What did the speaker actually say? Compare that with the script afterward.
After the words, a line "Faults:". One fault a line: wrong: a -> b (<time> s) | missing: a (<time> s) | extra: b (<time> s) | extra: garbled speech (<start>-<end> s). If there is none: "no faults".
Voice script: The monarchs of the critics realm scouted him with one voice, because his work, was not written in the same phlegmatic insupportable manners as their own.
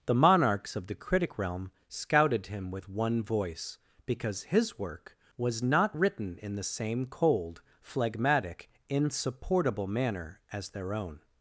The monarchs of the critic realm scouted him with one voice, because his work, was not written in the same cold, phlegmatic insupportable manner as their own.
Faults:
wrong: critics -> critic (0.9 s)
extra: cold (7.1 s)
wrong: manners -> manner (9.9 s)